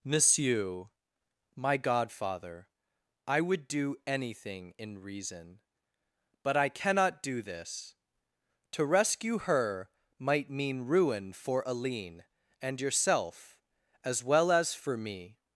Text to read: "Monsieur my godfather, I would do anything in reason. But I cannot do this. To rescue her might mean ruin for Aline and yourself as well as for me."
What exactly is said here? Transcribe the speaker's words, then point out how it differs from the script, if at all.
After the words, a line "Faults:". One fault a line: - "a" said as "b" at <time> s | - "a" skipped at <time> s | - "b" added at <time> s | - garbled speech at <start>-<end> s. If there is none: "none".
"Monsieur my godfather, I would do anything in reason. But I cannot do this. To rescue her might mean ruin for Aline and yourself as well as for me."
Faults:
none